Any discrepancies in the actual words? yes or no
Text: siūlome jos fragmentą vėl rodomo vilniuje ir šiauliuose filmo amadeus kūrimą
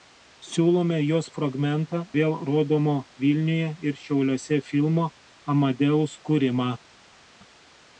no